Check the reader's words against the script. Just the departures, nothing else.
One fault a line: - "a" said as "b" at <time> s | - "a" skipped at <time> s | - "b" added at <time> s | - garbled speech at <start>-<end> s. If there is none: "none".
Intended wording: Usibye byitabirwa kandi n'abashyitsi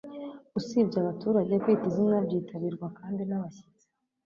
- "abaturage kwita izina" added at 1.0 s